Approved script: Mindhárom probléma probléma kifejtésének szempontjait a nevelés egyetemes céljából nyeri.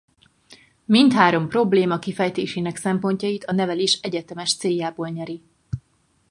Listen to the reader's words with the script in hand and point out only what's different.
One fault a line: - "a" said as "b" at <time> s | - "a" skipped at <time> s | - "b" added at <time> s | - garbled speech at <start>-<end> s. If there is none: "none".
- "probléma" skipped at 2.0 s